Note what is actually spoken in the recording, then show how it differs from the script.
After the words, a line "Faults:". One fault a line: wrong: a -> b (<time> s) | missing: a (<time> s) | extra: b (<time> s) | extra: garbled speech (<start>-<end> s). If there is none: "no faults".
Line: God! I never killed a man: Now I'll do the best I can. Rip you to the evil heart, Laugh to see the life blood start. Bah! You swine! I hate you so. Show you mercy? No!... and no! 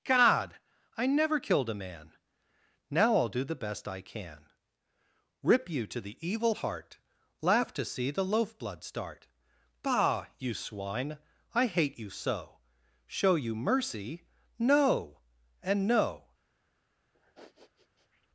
God! I never killed a man: Now I'll do the best I can. Rip you to the evil heart, Laugh to see the loaf blood start. Bah! You swine! I hate you so. Show you mercy? No!... and no!
Faults:
wrong: life -> loaf (8.2 s)